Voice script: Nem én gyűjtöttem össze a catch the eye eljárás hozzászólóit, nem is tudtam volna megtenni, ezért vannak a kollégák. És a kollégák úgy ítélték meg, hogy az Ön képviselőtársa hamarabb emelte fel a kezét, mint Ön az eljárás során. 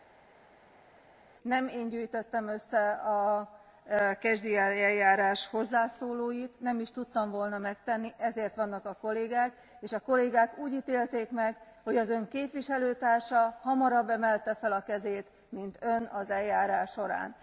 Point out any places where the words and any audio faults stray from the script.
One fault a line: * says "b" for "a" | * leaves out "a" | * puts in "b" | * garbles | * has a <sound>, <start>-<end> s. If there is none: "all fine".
all fine